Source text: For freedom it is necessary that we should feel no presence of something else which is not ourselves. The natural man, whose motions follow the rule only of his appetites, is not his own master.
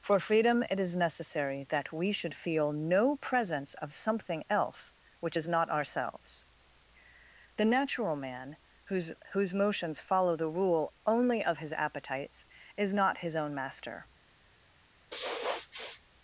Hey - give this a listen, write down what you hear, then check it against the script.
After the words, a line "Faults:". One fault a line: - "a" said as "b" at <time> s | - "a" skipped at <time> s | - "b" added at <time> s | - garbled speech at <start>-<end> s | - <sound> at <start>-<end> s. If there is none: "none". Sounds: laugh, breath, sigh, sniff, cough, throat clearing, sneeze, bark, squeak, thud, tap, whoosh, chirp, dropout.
For freedom it is necessary that we should feel no presence of something else which is not ourselves. The natural man, whose whose motions follow the rule only of his appetites, is not his own master.
Faults:
- "whose" added at 9.3 s
- sniff at 15.1-16.0 s